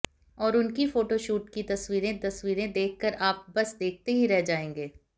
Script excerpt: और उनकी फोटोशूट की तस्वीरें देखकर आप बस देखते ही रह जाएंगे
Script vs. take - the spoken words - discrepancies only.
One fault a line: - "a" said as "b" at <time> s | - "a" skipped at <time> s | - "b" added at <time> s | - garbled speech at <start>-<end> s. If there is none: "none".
- "तस्वीरें" added at 2.2 s